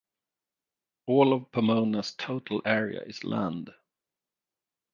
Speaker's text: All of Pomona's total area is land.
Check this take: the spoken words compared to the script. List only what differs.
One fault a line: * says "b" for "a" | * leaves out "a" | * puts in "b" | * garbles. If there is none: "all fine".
all fine